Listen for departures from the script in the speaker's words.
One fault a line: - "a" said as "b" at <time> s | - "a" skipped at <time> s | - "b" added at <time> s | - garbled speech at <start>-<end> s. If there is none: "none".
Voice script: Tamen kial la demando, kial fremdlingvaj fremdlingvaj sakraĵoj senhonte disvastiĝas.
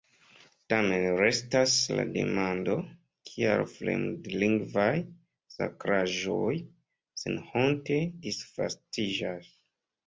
- "kial" said as "restas" at 1.2 s
- "fremdlingvaj" skipped at 4.9 s